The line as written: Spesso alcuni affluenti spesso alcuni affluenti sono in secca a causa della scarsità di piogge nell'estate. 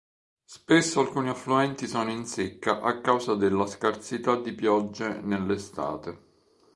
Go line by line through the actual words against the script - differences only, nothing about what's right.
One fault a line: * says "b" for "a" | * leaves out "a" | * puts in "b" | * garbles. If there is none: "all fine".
* leaves out "spesso alcuni affluenti"